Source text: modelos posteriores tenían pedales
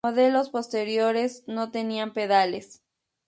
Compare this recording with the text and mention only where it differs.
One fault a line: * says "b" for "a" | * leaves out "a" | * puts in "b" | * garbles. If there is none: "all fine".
* puts in "no"